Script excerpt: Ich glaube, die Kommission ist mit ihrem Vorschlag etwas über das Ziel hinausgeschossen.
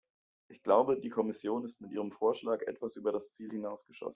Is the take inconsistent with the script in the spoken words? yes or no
no